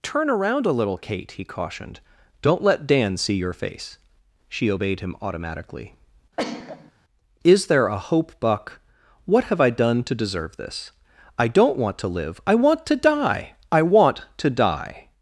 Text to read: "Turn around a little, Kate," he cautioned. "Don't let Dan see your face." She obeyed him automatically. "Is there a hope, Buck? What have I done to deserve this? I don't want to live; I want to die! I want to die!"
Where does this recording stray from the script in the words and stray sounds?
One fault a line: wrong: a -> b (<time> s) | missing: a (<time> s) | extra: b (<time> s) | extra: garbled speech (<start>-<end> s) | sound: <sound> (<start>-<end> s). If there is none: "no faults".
sound: sneeze (6.4-6.9 s)